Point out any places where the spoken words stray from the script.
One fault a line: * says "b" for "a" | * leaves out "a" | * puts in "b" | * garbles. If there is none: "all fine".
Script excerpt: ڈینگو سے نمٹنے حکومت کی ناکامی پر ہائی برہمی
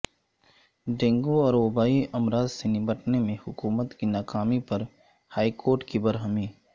* puts in "اور وبائی امراض"
* puts in "میں"
* puts in "کورٹ کی"